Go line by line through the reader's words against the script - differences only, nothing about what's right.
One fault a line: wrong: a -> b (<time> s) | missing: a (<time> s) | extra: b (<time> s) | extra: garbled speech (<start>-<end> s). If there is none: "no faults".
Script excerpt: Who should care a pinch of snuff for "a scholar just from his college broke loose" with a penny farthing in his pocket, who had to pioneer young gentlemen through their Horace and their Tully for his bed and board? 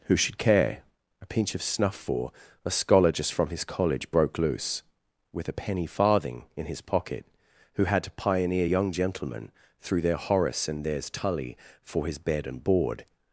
wrong: their -> theirs (10.8 s)